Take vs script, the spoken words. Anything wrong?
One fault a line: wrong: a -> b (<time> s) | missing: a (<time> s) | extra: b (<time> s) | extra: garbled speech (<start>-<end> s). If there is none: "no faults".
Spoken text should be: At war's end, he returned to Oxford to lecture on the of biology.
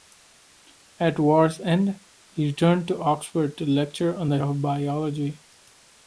no faults